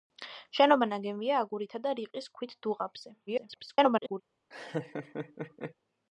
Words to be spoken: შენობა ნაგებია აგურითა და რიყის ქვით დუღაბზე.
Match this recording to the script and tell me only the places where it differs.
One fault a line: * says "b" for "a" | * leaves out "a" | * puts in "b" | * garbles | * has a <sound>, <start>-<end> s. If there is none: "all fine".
* garbles
* has a laugh, 4.5-5.7 s